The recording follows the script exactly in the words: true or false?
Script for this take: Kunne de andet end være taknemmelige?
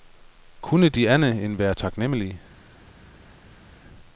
true